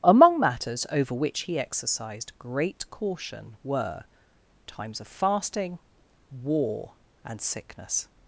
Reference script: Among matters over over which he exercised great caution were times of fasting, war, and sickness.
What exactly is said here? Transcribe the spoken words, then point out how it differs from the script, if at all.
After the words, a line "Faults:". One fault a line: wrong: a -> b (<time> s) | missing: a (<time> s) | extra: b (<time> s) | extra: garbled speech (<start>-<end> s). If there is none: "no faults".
Among matters over which he exercised great caution were times of fasting, war, and sickness.
Faults:
missing: over (1.1 s)